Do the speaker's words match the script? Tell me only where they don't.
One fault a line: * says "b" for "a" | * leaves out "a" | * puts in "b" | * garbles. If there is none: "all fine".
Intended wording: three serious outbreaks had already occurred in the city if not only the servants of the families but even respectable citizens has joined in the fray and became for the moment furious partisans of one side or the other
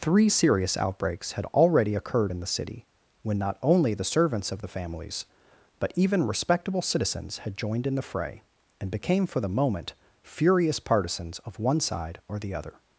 * says "when" for "if"
* says "had" for "has"